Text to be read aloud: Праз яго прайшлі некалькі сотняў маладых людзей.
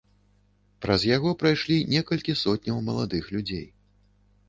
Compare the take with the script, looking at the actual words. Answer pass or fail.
pass